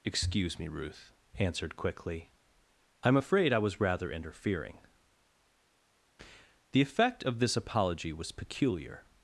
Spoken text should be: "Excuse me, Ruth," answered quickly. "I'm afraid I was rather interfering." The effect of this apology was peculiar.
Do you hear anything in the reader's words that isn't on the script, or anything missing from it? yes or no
no